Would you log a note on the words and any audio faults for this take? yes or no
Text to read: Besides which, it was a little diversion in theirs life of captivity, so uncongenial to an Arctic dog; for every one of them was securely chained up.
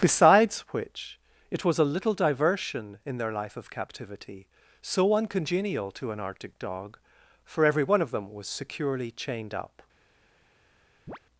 yes